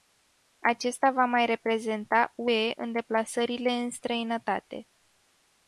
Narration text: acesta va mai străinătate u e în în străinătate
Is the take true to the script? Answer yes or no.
no